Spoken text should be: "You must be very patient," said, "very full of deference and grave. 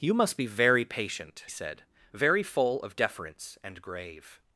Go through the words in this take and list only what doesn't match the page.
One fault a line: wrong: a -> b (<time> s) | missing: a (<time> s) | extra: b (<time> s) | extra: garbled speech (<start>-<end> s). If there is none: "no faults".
no faults